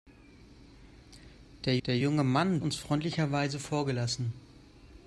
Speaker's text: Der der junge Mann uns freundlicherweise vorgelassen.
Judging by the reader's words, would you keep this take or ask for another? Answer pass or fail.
pass